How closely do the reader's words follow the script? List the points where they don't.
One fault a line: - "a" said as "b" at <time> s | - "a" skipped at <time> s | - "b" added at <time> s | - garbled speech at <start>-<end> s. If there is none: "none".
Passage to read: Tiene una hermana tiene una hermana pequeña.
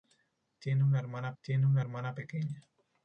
none